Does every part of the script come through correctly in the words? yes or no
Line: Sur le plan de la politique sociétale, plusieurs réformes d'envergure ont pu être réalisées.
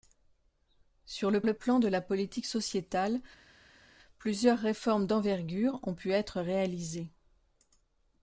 no